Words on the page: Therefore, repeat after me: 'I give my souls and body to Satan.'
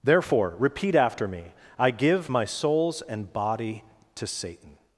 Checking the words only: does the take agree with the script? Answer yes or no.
yes